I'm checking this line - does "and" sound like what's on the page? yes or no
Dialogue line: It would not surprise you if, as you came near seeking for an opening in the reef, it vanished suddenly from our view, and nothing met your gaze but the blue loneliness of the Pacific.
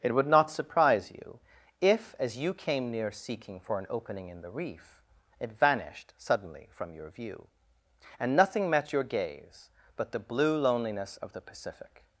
yes